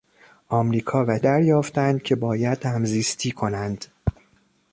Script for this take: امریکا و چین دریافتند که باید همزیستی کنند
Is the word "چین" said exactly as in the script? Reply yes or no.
no